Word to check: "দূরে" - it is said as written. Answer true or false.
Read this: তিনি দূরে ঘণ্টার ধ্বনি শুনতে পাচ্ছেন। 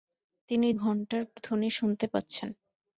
false